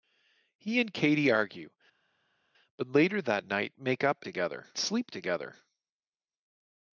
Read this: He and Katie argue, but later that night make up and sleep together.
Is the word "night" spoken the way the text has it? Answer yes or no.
yes